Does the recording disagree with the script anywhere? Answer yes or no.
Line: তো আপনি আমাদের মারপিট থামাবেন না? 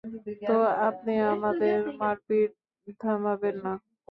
no